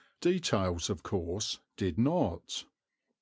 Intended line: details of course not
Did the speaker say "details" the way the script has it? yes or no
yes